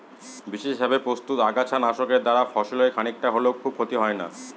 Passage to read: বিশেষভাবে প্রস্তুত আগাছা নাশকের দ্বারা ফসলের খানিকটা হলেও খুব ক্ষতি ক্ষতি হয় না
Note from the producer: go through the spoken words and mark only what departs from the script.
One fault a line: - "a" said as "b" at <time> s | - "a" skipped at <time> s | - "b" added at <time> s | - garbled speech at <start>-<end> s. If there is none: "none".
- "ক্ষতি" skipped at 4.0 s